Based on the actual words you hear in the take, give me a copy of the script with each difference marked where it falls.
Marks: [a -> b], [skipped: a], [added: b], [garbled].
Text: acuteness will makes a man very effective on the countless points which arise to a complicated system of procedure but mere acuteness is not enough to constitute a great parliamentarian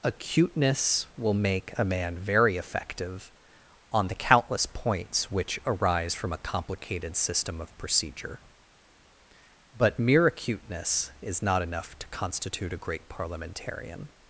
acuteness will [makes -> make] a man very effective on the countless points which arise [to -> from] a complicated system of procedure but mere acuteness is not enough to constitute a great parliamentarian